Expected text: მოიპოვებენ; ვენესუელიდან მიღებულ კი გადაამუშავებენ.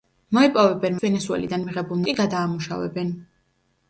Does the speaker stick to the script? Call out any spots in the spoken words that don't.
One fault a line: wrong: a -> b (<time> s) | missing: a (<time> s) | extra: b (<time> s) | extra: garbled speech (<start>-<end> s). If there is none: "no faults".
no faults